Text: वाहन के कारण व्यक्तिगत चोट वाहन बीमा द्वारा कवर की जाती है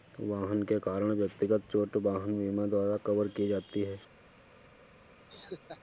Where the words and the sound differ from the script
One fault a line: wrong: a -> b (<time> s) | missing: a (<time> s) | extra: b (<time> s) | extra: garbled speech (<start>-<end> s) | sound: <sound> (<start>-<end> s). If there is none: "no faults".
sound: laugh (5.3-5.8 s)